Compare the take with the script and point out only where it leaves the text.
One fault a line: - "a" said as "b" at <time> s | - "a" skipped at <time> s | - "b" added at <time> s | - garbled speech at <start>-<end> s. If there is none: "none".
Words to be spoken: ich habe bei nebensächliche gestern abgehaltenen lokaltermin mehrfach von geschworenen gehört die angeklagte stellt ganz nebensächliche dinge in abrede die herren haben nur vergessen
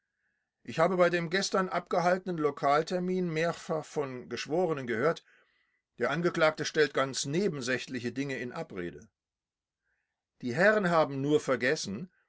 - "nebensächliche" said as "dem" at 1.1 s
- "die" said as "der" at 6.0 s